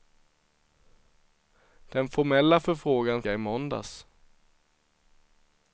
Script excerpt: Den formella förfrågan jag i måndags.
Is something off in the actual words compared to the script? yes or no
no